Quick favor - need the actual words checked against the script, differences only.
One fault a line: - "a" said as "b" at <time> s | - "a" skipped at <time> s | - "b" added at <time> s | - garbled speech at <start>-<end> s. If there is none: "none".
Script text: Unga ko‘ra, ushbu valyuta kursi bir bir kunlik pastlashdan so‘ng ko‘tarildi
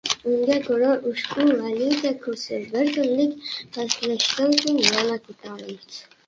- "bir" skipped at 2.9 s
- "yana" added at 4.9 s